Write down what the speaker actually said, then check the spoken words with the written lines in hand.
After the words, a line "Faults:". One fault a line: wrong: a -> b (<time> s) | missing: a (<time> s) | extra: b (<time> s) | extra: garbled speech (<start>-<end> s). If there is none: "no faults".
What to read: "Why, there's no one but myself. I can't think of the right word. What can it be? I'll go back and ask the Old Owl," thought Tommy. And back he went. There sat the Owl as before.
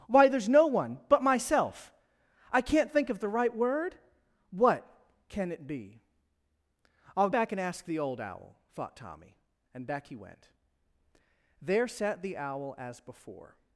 "Why, there's no one but myself. I can't think of the right word. What can it be? I'll back and ask the Old Owl," thought Tommy. And back he went. There sat the Owl as before.
Faults:
missing: go (7.3 s)